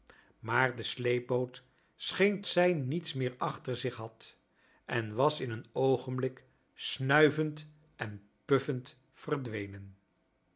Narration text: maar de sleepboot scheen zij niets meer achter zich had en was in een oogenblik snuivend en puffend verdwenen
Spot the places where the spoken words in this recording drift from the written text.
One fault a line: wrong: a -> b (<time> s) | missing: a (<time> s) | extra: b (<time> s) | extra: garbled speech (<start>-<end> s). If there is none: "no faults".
no faults